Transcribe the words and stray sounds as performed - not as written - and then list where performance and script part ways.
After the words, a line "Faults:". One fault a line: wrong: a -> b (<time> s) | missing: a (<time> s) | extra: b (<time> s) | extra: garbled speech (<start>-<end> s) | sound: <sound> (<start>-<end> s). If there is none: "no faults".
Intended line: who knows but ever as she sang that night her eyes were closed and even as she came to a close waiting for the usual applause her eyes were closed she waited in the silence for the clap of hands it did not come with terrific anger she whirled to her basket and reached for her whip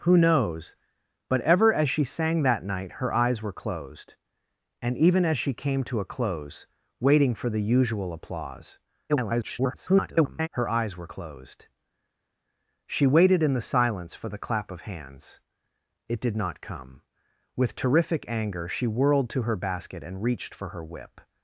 who knows but ever as she sang that night her eyes were closed and even as she came to a close waiting for the usual applause [garbled] her eyes were closed she waited in the silence for the clap of hands it did not come with terrific anger she whirled to her basket and reached for her whip
Faults:
extra: garbled speech (9.1-10.5 s)